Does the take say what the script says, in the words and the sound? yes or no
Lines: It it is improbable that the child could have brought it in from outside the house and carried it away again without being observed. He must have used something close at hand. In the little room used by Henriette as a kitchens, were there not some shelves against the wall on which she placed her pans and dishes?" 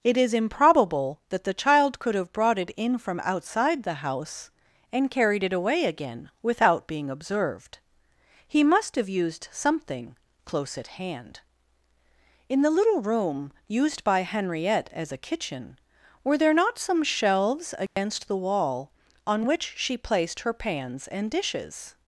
no